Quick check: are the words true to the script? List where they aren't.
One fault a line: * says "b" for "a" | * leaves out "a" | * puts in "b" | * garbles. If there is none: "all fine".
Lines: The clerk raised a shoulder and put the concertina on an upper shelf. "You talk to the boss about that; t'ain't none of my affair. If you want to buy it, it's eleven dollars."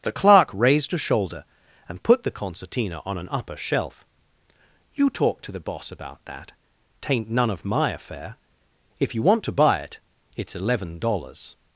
all fine